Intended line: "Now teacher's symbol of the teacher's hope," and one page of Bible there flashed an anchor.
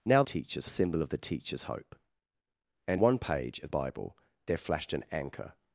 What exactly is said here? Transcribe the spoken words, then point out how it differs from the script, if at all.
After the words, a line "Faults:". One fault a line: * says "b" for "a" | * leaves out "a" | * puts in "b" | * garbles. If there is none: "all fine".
"Now teacher's symbol of the teacher's hope," and one page of Bible there flashed an anchor.
Faults:
all fine